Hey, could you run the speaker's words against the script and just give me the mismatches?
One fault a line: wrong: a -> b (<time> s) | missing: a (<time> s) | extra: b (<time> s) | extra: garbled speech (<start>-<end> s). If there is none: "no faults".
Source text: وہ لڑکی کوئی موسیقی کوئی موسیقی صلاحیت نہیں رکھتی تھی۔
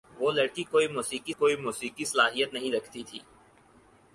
no faults